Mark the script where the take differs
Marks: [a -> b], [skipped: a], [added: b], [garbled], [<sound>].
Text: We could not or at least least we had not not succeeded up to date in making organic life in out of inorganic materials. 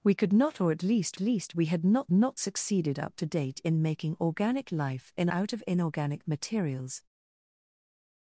We could not or at least least we had not not succeeded up to date in making organic life in out of inorganic materials.